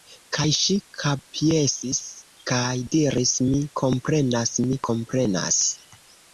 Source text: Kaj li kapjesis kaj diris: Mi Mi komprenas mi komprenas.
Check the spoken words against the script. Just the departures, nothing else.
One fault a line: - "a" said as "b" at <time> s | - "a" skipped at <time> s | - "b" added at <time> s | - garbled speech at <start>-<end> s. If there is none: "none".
- "li" said as "ŝi" at 0.6 s
- "Mi" skipped at 3.6 s